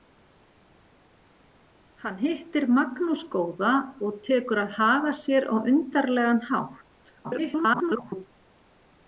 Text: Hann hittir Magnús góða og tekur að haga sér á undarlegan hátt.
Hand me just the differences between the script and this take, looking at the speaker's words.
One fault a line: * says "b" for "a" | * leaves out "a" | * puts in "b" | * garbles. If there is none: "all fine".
* garbles